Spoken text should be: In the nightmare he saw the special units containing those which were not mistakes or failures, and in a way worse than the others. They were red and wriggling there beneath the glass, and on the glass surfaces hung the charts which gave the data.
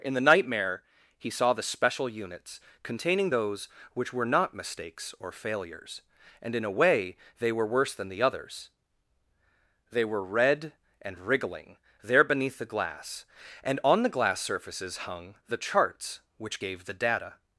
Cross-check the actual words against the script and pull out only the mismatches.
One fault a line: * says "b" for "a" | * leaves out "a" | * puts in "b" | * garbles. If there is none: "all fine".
* puts in "they were"